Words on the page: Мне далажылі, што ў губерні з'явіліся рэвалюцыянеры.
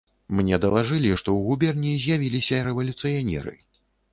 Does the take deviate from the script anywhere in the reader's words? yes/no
no